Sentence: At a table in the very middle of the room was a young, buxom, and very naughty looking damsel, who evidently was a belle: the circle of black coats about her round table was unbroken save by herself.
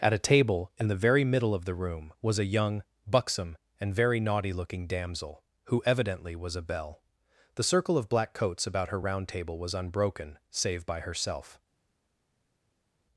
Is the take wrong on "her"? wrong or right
right